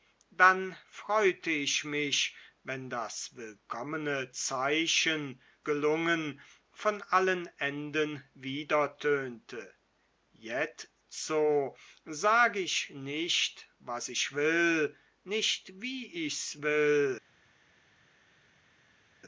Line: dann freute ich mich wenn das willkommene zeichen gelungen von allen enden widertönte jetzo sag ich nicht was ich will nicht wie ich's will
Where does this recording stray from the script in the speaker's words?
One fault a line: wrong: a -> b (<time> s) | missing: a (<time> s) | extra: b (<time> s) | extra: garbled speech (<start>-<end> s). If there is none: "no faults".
no faults